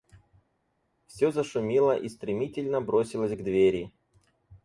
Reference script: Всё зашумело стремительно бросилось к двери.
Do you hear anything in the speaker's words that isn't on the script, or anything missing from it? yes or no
yes